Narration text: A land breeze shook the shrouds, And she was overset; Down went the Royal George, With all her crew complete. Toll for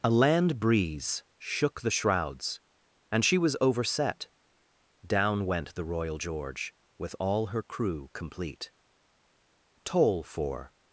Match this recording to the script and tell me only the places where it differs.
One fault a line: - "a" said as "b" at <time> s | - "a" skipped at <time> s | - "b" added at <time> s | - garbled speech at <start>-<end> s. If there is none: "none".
none